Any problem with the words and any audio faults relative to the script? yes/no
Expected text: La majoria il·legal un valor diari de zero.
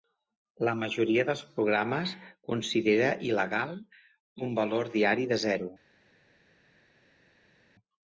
yes